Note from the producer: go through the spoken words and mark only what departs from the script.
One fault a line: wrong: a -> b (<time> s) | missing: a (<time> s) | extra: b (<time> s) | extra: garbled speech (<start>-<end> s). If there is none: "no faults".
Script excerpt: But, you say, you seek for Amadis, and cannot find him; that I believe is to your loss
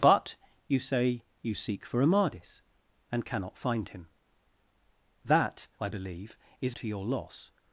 no faults